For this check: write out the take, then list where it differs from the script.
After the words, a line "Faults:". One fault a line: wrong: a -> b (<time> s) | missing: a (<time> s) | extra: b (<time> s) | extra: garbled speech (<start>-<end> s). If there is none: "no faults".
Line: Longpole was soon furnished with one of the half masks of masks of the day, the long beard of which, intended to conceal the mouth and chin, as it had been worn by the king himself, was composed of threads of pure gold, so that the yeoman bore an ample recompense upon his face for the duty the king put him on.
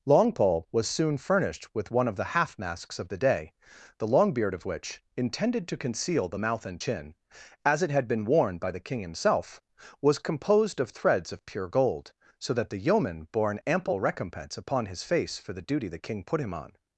Longpole was soon furnished with one of the half masks of the day, the long beard of which, intended to conceal the mouth and chin, as it had been worn by the king himself, was composed of threads of pure gold, so that the yeoman bore an ample recompense upon his face for the duty the king put him on.
Faults:
missing: masks of (3.1 s)